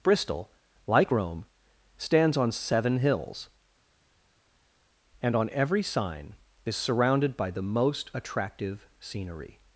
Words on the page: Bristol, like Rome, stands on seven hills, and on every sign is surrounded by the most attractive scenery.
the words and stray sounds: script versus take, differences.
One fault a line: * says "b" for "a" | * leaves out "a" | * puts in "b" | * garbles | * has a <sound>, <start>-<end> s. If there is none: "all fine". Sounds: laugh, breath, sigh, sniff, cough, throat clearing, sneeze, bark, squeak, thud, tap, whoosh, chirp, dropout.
all fine